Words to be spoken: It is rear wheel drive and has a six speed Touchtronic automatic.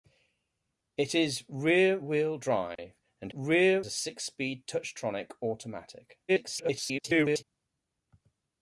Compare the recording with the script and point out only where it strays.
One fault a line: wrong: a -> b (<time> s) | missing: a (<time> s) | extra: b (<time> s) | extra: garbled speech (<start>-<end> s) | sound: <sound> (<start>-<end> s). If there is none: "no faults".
sound: dropout (2.8-2.8 s)
wrong: has -> rear (3.3 s)
extra: garbled speech (6.3-7.4 s)